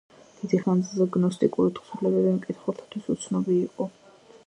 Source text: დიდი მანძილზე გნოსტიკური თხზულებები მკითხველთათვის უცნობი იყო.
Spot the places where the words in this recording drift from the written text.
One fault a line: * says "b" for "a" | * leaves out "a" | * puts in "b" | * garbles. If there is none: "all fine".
all fine